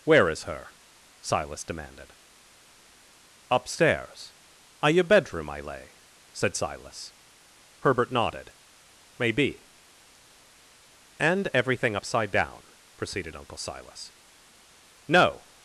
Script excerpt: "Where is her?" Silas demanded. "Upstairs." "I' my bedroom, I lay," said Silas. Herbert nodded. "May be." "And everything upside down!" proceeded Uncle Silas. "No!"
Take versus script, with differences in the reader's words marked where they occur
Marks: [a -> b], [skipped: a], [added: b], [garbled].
"Where is her?" Silas demanded. "Upstairs." "I' [my -> your] bedroom, I lay," said Silas. Herbert nodded. "May be." "And everything upside down!" proceeded Uncle Silas. "No!"